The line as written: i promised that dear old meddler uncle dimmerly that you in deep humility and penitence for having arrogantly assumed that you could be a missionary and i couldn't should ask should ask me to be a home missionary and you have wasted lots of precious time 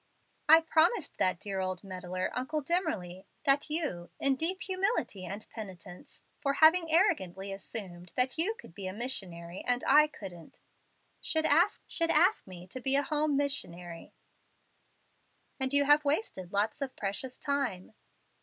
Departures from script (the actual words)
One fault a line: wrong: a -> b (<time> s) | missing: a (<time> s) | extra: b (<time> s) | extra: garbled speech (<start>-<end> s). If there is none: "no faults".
no faults